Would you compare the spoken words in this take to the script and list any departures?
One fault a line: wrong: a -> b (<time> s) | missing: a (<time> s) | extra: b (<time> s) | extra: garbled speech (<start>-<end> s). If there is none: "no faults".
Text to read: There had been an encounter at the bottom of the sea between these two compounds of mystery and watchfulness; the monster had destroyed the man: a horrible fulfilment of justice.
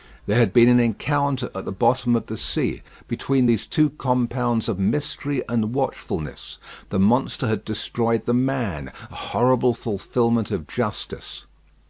no faults